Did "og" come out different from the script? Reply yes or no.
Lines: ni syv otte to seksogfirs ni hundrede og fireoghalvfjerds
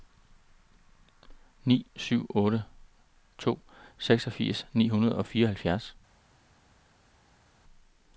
no